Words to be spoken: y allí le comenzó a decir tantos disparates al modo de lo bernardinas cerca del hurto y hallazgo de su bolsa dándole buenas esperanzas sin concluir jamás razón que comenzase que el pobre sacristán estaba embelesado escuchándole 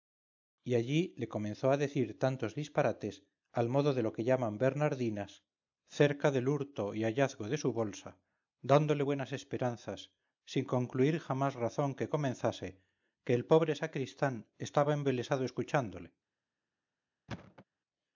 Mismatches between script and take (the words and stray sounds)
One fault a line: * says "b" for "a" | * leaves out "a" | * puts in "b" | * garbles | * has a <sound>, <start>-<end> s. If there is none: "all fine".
* puts in "que llaman"
* has a thud, 17.3-17.6 s